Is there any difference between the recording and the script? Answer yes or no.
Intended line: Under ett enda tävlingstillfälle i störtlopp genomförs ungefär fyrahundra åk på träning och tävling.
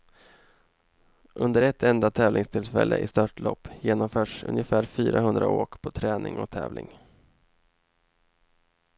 no